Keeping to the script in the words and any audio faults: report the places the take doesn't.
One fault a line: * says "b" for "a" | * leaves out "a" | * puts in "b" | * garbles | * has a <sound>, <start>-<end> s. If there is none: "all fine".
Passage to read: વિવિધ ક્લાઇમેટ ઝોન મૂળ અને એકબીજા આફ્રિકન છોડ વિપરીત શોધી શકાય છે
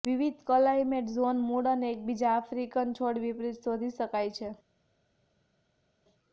all fine